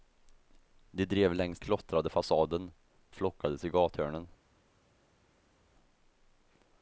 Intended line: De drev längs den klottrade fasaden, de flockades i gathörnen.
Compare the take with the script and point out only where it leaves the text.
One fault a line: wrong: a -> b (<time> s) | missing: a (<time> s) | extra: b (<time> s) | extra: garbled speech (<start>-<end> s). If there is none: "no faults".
missing: den (1.6 s)
missing: de (2.7 s)